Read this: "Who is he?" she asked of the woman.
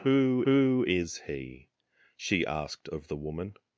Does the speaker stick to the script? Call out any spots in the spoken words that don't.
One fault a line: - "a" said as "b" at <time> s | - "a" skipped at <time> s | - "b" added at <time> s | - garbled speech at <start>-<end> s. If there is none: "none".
- "who" added at 0.4 s